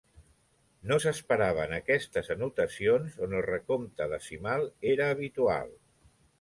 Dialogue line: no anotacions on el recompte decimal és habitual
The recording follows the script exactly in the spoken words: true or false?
false